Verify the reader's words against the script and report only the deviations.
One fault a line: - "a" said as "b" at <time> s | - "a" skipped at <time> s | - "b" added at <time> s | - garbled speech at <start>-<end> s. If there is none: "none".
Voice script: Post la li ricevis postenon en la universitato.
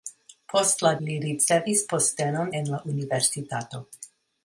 none